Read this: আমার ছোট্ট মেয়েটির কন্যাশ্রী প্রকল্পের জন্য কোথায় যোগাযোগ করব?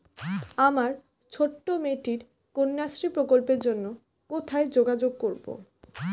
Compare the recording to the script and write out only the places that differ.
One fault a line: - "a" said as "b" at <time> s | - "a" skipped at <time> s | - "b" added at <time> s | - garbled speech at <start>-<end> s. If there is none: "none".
none